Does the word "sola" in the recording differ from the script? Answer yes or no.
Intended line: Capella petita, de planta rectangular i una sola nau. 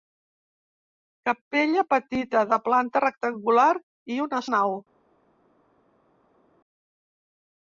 yes